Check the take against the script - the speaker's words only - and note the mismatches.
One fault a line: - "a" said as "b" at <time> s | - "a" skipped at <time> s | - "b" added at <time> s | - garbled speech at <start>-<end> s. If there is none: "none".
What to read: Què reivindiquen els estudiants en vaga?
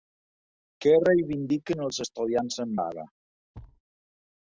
none